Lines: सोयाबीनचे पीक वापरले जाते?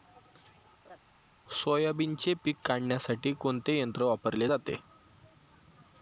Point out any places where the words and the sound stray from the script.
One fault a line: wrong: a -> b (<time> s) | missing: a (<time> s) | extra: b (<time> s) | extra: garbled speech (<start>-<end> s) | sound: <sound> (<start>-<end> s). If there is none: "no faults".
sound: laugh (0.8-1.0 s)
extra: काढण्यासाठी कोणते यंत्र (2.6 s)